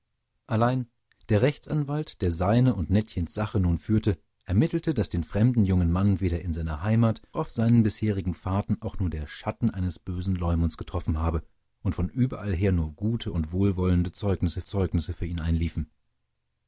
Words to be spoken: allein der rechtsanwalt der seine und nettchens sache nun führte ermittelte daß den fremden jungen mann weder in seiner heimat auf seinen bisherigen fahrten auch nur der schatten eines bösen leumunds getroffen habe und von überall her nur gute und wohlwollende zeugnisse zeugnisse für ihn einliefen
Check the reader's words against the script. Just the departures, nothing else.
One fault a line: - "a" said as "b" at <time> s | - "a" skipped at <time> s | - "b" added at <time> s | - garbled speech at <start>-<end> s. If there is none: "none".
none